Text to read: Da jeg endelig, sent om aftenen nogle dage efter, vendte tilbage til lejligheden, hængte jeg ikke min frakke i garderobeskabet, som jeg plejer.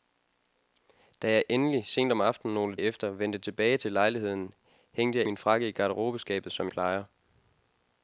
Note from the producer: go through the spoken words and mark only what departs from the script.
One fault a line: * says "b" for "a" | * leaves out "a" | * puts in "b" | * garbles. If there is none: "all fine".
* leaves out "dage"
* leaves out "ikke"
* leaves out "jeg"